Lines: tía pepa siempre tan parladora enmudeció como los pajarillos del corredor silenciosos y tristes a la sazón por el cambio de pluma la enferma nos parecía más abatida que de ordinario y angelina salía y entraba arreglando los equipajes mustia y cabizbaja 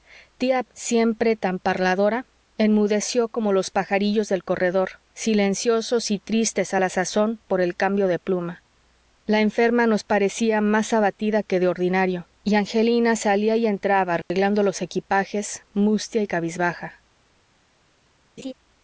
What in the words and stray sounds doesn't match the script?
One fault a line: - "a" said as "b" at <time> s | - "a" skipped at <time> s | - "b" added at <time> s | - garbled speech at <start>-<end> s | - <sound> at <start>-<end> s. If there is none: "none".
- "pepa" skipped at 0.6 s
- dropout at 14.2-14.3 s
- laugh at 18.4-18.5 s